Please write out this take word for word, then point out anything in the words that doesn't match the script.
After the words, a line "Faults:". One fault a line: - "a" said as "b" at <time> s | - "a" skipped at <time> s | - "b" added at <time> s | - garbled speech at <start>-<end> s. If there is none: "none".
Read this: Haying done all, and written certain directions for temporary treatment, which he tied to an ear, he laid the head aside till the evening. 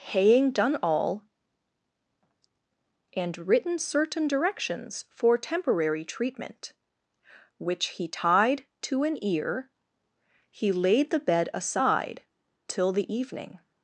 Haying done all, and written certain directions for temporary treatment, which he tied to an ear, he laid the bed aside till the evening.
Faults:
- "head" said as "bed" at 11.2 s